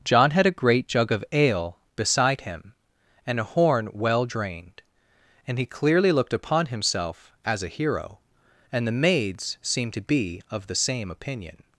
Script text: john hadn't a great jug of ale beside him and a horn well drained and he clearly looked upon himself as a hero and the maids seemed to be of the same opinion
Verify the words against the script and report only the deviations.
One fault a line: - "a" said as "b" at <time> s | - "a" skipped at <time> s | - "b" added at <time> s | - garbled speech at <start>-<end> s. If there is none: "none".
- "hadn't" said as "had" at 0.3 s